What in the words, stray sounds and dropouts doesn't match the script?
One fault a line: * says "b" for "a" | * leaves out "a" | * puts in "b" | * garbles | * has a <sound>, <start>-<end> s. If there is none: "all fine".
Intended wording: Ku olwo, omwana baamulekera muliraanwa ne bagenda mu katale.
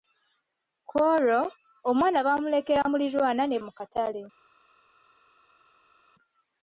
* leaves out "bagenda"